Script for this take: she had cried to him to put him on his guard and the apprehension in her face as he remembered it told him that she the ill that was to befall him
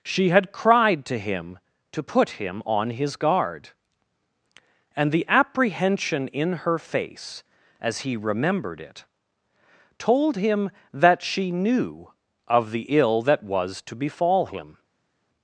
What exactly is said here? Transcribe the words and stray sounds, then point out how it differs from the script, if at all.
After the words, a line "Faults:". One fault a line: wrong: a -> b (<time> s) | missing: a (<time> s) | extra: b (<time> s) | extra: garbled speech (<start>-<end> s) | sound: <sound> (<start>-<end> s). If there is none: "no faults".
she had cried to him to put him on his guard and the apprehension in her face as he remembered it told him that she knew of the ill that was to befall him
Faults:
extra: knew of (11.5 s)